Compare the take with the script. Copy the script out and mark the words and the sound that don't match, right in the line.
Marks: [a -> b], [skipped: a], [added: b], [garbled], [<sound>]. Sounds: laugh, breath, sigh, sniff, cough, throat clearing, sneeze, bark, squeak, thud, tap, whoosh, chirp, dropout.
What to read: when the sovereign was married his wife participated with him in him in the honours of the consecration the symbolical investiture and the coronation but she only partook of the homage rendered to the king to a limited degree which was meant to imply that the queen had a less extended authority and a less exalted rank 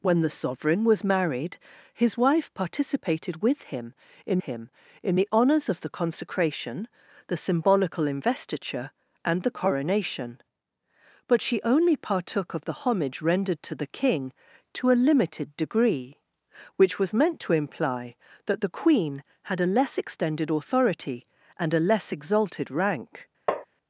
when the sovereign was married his wife participated with him in him in the honours of the consecration the symbolical investiture and the coronation but she only partook of the homage rendered to the king to a limited degree which was meant to imply that the queen had a less extended authority and a less exalted rank [tap]